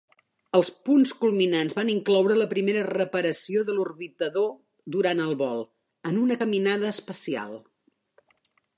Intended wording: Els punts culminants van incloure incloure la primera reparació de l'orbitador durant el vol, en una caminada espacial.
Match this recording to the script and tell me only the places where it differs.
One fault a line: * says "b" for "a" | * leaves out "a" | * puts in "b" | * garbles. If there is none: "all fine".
* leaves out "incloure"